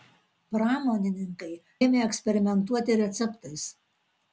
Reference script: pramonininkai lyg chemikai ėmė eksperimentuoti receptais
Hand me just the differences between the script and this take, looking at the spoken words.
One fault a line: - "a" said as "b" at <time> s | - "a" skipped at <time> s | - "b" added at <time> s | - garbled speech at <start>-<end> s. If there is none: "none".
- "lyg chemikai" skipped at 1.5 s